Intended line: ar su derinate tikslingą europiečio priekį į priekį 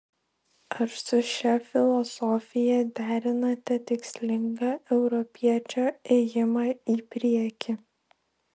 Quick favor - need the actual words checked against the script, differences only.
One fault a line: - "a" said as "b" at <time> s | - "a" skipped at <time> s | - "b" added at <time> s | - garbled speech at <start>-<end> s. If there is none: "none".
- "šia filosofija" added at 1.3 s
- "priekį" said as "ėjimą" at 6.2 s